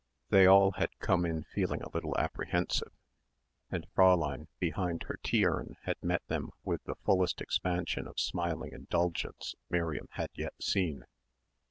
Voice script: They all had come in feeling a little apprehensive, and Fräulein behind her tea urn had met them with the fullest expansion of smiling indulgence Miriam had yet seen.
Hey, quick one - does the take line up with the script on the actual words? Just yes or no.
yes